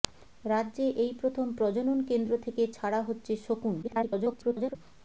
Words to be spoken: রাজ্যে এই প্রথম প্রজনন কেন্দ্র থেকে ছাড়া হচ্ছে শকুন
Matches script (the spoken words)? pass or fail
fail